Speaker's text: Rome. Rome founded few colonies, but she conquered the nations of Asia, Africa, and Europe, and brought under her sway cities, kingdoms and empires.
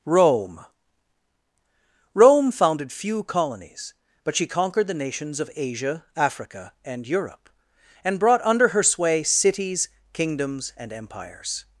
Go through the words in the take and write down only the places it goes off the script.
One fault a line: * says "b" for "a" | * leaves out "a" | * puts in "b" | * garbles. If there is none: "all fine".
all fine